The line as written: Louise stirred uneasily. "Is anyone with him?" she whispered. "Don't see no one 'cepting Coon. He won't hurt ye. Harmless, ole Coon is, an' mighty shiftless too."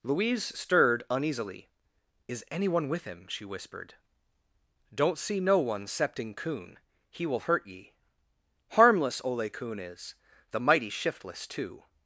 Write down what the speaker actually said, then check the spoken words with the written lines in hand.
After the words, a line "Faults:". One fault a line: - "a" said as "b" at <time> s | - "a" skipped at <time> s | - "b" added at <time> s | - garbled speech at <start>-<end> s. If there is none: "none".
Louise stirred uneasily. "Is anyone with him?" she whispered. "Don't see no one 'cepting Coon. He will hurt ye. Harmless, ole Coon is, the' mighty shiftless too."
Faults:
- "won't" said as "will" at 7.2 s
- "an" said as "the" at 10.5 s